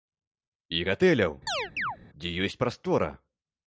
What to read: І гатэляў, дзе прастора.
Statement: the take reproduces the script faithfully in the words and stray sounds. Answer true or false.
false